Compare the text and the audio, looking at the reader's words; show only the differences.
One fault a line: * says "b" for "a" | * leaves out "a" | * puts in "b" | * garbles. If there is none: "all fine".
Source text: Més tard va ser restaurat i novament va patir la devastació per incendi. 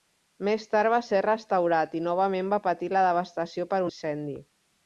all fine